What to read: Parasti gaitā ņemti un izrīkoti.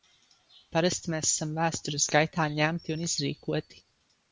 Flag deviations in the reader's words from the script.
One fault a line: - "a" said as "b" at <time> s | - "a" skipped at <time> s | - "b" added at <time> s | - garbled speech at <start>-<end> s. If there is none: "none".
- "mēs esam vēstures" added at 1.1 s